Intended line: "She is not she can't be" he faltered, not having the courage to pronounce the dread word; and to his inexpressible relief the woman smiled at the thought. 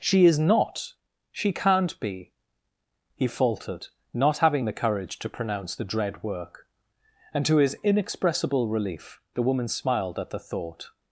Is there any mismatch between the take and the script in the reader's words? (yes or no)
yes